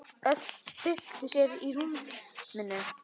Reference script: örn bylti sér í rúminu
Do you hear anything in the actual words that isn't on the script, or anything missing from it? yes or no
no